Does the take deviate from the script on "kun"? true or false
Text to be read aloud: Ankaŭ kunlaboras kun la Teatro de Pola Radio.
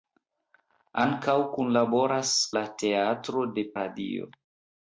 true